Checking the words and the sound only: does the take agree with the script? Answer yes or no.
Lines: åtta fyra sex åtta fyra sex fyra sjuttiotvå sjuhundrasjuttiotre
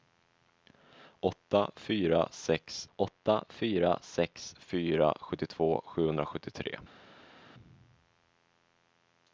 yes